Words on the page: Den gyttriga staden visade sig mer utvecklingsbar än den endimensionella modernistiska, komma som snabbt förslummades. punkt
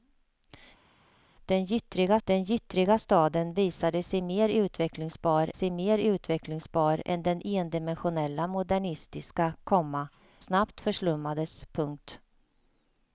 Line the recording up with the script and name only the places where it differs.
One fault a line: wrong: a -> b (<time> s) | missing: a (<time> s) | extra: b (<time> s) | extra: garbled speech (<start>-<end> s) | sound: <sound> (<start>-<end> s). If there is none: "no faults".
extra: den gyttriga (2.2 s)
extra: sig mer utvecklingsbar (5.5 s)
missing: som (10.1 s)